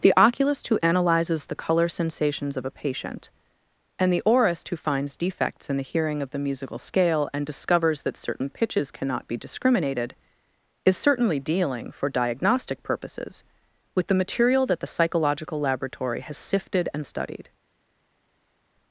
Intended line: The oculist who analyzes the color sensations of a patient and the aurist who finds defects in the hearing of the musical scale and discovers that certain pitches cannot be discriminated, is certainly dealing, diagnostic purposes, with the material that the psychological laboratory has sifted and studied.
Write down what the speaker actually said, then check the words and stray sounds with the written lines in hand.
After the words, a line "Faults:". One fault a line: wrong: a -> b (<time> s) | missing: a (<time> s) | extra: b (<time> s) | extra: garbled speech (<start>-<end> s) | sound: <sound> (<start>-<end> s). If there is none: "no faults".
The oculist who analyzes the color sensations of a patient and the aurist who finds defects in the hearing of the musical scale and discovers that certain pitches cannot be discriminated, is certainly dealing, for diagnostic purposes, with the material that the psychological laboratory has sifted and studied.
Faults:
extra: for (11.9 s)